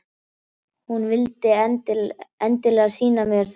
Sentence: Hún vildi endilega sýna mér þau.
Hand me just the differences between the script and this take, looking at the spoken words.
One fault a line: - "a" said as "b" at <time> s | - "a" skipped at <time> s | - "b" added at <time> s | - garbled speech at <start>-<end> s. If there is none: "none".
none